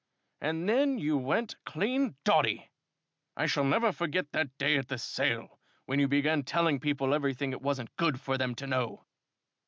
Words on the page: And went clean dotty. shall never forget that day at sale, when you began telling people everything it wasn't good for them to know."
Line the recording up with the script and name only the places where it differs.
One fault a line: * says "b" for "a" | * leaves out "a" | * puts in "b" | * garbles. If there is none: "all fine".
* puts in "then you"
* puts in "I"
* puts in "the"